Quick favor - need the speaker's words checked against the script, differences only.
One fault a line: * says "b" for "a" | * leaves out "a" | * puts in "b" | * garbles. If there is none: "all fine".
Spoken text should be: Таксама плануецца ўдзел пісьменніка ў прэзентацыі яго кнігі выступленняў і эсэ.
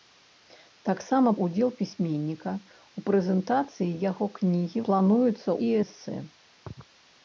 * leaves out "плануецца"
* says "плануецца" for "выступленняў"